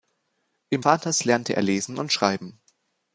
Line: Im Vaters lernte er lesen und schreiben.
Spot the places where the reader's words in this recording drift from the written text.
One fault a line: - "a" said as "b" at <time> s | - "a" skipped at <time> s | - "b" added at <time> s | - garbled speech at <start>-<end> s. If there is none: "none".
none